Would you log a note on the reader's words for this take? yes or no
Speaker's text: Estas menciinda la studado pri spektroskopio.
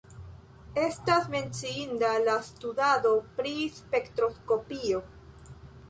no